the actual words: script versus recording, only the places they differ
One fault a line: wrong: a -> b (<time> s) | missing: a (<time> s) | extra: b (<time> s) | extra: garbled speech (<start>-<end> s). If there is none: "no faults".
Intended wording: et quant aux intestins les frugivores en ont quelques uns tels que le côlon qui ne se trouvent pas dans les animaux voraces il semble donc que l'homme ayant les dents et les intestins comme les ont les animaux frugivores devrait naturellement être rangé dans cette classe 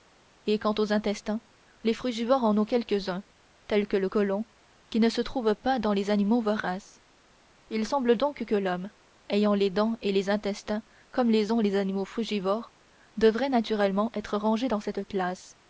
no faults